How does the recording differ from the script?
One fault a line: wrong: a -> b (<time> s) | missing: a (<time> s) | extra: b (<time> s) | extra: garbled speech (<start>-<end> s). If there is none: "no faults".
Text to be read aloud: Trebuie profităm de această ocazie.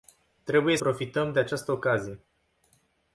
no faults